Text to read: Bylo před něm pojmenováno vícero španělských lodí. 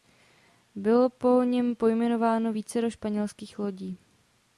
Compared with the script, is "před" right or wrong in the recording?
wrong